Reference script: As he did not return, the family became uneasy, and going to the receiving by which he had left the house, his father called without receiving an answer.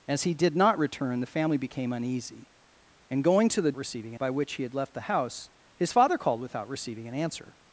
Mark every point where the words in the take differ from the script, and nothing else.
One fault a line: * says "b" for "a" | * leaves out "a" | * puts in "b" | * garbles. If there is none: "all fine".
all fine